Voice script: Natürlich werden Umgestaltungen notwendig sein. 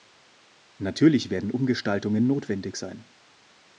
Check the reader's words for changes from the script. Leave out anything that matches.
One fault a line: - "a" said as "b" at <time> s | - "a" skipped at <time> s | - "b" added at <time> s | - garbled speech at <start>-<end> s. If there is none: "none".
none